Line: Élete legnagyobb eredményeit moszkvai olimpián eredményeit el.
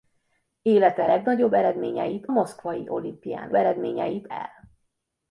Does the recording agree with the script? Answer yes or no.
yes